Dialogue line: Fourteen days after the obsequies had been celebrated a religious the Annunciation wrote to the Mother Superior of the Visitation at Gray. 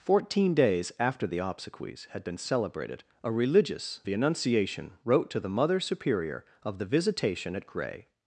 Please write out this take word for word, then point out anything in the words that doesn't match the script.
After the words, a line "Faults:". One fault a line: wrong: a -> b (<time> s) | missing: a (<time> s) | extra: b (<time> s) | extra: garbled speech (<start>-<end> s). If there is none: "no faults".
Fourteen days after the obsequies had been celebrated a religious the Annunciation wrote to the Mother Superior of the Visitation at Gray.
Faults:
no faults